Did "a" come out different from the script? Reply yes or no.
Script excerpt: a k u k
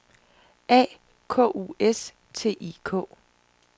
no